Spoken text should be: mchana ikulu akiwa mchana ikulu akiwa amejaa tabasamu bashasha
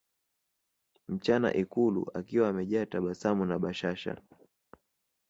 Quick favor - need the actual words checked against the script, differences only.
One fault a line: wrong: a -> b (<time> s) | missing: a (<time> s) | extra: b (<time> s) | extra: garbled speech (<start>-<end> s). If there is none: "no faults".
missing: mchana ikulu akiwa (2.5 s)
extra: na (3.5 s)